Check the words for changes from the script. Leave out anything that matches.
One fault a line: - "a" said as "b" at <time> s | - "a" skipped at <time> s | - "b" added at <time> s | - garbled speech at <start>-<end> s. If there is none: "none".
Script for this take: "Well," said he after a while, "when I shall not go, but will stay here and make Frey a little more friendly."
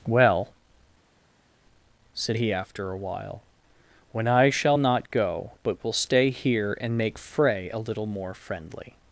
none